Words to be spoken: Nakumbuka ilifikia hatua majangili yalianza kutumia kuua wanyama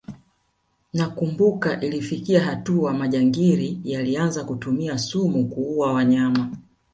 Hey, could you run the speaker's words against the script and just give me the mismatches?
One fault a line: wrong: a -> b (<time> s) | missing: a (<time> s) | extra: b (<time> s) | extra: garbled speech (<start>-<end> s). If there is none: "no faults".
extra: sumu (5.0 s)